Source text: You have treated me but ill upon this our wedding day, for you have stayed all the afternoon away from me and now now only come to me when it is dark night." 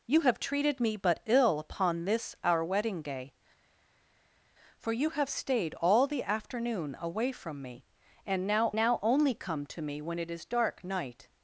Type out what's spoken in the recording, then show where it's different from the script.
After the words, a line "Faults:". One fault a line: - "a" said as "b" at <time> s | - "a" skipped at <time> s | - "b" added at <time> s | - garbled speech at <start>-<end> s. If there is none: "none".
You have treated me but ill upon this our wedding day, for you have stayed all the afternoon away from me and now now only come to me when it is dark night."
Faults:
none